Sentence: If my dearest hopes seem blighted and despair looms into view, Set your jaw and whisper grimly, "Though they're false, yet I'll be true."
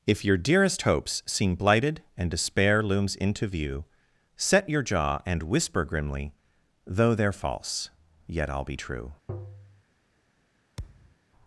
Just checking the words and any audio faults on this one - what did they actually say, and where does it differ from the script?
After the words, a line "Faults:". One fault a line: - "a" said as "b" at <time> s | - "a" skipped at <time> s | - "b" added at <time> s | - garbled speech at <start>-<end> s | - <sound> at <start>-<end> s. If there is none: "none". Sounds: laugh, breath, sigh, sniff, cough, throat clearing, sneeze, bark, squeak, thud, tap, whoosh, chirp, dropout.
If your dearest hopes seem blighted and despair looms into view, Set your jaw and whisper grimly, "Though they're false, yet I'll be true."
Faults:
- "my" said as "your" at 0.2 s
- tap at 9.3-9.8 s
- thud at 10.8-11.2 s